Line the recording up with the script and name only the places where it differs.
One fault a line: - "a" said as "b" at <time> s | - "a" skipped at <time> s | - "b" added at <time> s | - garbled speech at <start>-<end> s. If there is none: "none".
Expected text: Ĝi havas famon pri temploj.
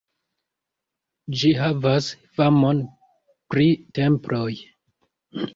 none